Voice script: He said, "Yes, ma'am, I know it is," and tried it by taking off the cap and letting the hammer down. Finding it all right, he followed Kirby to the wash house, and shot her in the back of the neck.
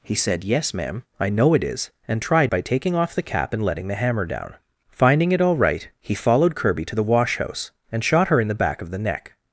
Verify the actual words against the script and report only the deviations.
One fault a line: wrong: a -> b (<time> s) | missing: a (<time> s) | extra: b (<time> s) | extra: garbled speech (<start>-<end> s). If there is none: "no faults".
missing: it (2.5 s)